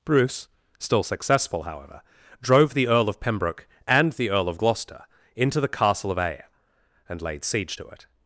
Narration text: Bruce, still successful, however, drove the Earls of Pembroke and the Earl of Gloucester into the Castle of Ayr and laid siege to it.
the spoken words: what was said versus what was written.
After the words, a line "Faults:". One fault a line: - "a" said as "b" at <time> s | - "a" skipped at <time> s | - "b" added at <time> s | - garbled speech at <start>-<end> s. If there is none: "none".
Bruce, still successful, however, drove the Earl of Pembroke and the Earl of Gloucester into the Castle of Ayr and laid siege to it.
Faults:
- "Earls" said as "Earl" at 2.9 s